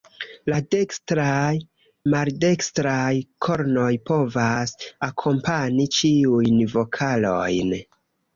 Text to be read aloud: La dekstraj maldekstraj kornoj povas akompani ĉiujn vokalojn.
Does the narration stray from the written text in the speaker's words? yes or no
no